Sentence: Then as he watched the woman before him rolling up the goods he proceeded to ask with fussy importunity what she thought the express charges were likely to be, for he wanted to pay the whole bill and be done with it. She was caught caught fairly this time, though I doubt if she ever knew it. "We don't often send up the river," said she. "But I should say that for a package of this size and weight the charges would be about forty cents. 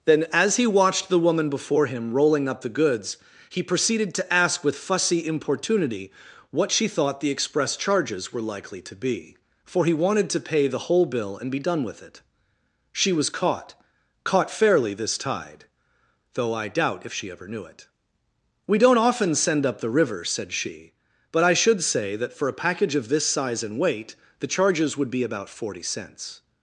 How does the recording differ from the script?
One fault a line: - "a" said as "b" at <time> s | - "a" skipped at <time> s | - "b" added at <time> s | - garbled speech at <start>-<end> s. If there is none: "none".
- "time" said as "tide" at 15.2 s